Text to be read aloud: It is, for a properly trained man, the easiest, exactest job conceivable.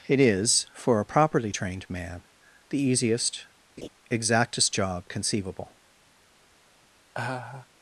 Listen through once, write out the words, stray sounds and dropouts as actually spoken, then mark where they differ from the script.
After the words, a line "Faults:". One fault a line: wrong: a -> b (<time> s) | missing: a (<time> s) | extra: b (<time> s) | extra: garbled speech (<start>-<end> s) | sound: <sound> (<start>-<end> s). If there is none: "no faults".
It is, for a properly trained man, the easiest, exactest job conceivable.
Faults:
sound: laugh (3.8-3.9 s)
sound: laugh (7.1-7.7 s)